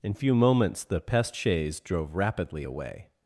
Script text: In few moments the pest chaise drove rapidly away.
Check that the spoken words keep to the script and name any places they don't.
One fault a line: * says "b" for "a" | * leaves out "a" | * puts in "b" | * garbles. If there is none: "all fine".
all fine